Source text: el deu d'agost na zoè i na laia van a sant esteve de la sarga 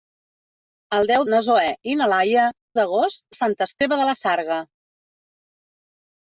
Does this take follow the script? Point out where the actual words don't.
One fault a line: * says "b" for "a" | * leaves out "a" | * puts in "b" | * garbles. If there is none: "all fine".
* leaves out "d'agost"
* says "d'agost" for "van"